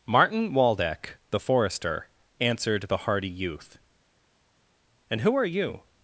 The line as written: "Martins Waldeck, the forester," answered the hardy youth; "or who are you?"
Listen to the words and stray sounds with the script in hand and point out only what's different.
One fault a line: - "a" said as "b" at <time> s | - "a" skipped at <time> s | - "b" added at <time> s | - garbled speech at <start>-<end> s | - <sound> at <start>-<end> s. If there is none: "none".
- "Martins" said as "Martin" at 0.1 s
- "or" said as "and" at 5.1 s